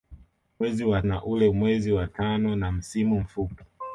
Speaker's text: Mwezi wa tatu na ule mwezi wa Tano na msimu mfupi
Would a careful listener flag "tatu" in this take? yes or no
yes